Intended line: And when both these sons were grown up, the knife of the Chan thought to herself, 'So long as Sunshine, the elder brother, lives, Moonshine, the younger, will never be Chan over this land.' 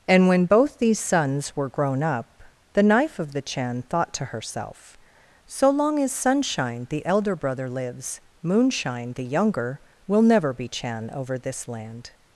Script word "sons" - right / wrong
right